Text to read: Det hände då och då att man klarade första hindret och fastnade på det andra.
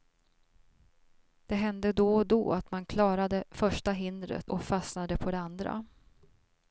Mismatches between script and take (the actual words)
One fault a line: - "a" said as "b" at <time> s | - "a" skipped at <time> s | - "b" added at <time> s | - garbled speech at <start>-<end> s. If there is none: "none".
none